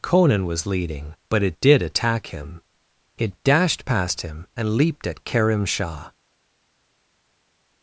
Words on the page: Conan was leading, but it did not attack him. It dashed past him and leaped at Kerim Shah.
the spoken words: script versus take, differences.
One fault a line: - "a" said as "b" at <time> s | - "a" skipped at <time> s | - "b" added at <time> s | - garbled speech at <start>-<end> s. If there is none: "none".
- "not" skipped at 1.8 s